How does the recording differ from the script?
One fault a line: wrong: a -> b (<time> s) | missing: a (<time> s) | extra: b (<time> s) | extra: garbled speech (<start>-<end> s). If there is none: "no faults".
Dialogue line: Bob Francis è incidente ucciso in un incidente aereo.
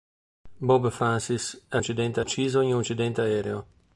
no faults